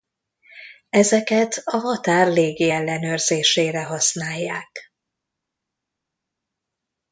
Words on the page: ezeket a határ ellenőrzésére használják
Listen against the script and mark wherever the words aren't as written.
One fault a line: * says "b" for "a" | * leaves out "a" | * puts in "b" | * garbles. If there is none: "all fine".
* puts in "légi"